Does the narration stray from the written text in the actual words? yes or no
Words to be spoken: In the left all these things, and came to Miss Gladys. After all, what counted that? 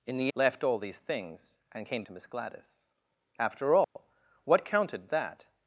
no